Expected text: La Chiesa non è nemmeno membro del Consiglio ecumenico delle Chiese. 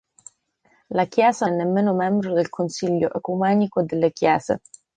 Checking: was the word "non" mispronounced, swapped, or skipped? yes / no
yes